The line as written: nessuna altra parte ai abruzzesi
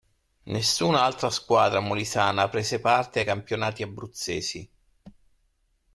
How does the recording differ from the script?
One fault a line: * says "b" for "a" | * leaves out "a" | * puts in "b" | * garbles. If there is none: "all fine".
* puts in "squadra molisana prese"
* puts in "campionati"